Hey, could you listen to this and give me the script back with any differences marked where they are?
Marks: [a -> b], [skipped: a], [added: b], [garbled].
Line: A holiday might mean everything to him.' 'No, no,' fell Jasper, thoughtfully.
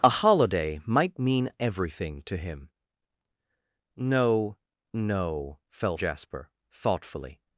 A holiday might mean everything to him.' 'No, no,' fell Jasper, thoughtfully.